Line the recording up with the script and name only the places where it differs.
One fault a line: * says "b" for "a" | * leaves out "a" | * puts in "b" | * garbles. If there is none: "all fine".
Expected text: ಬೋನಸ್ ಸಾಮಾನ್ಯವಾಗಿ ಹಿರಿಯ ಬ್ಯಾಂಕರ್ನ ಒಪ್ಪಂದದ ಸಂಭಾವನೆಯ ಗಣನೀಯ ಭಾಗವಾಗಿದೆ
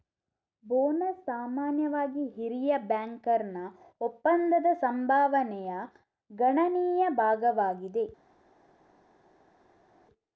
all fine